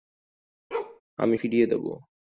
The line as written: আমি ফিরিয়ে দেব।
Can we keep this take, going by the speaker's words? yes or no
yes